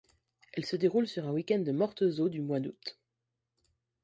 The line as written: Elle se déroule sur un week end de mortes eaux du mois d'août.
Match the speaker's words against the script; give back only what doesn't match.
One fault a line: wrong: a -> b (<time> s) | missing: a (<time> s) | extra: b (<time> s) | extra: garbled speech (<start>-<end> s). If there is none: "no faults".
no faults